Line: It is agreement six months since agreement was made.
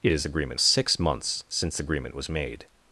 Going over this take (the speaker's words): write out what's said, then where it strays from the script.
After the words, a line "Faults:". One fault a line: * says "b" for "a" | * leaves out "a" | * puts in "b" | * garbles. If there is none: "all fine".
It is agreement six months since agreement was made.
Faults:
all fine